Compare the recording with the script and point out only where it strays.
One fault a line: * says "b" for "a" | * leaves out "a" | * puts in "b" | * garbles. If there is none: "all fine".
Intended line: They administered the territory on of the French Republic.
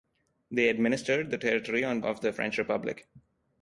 all fine